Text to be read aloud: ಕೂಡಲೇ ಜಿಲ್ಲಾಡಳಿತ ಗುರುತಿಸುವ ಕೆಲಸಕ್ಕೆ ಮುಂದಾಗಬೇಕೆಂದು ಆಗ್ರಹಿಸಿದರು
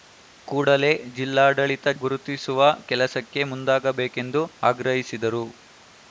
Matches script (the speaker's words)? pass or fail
pass